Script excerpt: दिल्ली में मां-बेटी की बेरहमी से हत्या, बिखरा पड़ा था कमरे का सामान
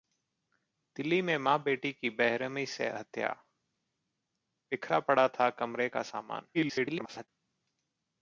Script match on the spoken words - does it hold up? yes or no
no